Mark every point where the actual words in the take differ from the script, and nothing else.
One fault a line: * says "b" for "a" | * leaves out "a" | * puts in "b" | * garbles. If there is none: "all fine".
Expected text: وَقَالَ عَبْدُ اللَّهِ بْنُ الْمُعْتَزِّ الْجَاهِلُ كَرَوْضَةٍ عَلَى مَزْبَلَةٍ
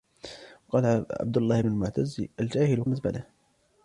* leaves out "بْنُ"
* leaves out "كَرَوْضَةٍ عَلَى"